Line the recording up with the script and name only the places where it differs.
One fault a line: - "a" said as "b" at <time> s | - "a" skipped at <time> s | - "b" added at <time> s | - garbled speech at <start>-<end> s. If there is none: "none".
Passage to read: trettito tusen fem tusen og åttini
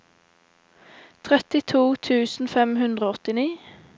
- "tusen" said as "hundre" at 2.9 s